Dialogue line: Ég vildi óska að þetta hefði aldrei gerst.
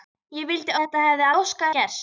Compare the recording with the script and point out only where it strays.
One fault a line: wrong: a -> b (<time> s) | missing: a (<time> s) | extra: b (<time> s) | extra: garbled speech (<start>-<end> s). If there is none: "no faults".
missing: óska (0.8 s)
wrong: aldrei -> óska (1.4 s)